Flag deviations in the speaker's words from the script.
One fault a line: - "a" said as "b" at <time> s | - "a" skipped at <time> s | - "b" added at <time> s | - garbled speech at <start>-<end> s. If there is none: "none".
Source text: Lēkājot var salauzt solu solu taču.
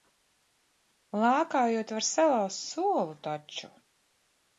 - "solu" skipped at 3.1 s